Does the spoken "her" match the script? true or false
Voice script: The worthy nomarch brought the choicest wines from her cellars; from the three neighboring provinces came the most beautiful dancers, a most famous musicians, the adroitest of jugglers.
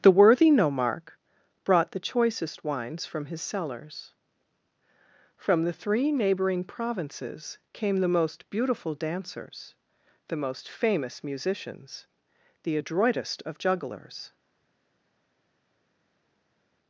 false